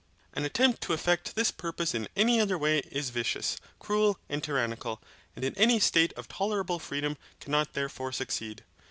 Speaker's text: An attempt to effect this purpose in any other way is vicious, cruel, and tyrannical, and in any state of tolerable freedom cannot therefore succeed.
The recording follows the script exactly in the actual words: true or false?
true